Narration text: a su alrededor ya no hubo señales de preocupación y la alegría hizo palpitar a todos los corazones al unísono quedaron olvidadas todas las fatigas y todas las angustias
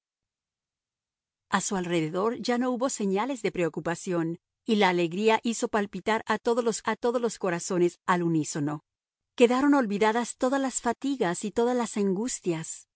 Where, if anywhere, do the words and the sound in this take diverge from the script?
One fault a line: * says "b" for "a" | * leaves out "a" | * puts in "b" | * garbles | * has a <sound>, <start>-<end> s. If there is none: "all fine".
* puts in "a todos los"